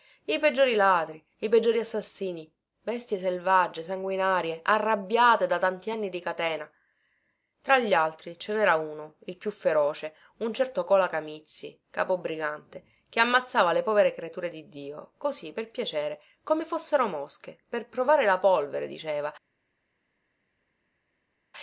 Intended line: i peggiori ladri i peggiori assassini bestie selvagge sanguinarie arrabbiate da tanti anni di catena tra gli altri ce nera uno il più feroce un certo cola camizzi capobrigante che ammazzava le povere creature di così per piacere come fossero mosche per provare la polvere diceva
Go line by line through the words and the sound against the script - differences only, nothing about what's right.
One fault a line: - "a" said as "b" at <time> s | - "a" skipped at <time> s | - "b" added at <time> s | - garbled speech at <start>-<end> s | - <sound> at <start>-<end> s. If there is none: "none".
- "dio" added at 14.7 s